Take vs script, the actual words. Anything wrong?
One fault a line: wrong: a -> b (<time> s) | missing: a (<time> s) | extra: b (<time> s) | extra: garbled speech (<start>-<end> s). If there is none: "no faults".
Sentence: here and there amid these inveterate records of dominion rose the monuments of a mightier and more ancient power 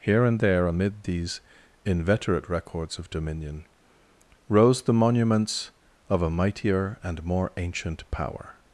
no faults